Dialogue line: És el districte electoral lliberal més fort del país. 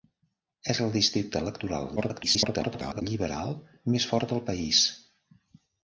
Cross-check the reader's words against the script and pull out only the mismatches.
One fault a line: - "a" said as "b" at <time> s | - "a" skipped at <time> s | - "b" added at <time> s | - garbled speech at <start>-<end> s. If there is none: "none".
- garbled speech at 2.0-3.0 s